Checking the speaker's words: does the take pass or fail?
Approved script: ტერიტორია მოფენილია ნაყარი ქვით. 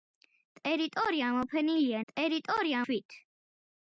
fail